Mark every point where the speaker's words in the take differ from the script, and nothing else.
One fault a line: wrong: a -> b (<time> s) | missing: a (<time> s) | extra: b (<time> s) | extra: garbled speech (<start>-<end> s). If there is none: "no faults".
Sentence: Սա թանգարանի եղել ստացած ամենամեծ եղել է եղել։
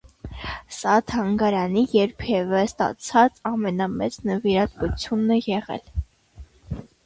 wrong: եղել -> երբևէ (2.0 s)
wrong: եղել -> նվիրատվությունն (4.3 s)